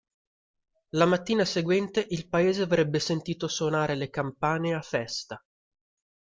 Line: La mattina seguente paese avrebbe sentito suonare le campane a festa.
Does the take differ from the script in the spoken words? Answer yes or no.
yes